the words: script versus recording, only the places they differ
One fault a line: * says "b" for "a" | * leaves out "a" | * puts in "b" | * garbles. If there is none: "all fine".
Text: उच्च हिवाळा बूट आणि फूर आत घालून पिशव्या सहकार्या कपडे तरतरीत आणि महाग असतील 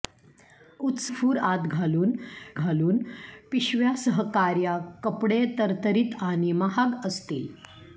* leaves out "हिवाळा बूट आणि"
* puts in "घालून"